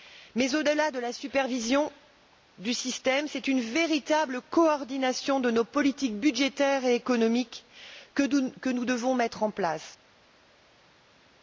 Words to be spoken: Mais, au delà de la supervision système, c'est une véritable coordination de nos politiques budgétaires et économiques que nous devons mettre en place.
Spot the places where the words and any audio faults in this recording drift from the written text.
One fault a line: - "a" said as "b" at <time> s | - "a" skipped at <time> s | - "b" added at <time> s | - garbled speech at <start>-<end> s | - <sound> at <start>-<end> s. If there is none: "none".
- "du" added at 2.6 s